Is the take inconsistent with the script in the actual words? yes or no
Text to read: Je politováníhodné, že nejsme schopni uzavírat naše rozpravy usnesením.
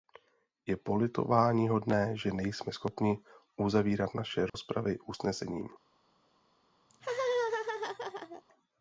no